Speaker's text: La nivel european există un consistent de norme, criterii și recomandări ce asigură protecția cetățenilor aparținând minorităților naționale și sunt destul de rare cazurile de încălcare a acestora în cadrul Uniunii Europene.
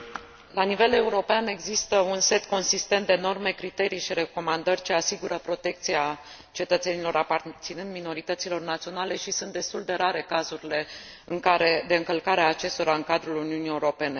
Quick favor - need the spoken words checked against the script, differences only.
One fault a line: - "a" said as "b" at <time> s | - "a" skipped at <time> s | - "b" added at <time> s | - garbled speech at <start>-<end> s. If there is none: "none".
- "set" added at 2.2 s